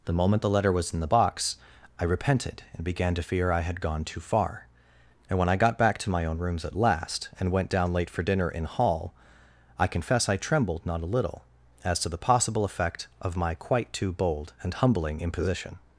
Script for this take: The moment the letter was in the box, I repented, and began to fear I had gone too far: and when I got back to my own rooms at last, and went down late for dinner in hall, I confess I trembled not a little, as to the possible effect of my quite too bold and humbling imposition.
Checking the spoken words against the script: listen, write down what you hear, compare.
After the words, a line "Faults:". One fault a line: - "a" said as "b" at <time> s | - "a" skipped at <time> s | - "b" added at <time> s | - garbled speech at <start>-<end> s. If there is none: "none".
The moment the letter was in the box, I repented, and began to fear I had gone too far: and when I got back to my own rooms at last, and went down late for dinner in hall, I confess I trembled not a little, as to the possible effect of my quite too bold and humbling imposition.
Faults:
none